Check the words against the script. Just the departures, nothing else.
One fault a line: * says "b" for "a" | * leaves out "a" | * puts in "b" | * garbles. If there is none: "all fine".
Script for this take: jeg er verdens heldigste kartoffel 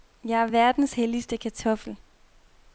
all fine